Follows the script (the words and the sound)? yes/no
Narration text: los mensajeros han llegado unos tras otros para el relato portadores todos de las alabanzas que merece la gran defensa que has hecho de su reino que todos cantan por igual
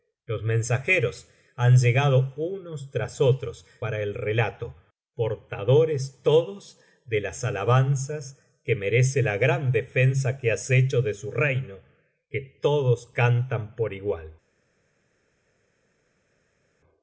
yes